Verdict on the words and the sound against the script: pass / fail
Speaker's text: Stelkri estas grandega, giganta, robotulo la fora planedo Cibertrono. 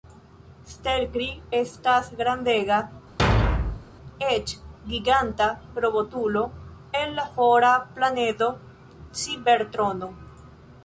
fail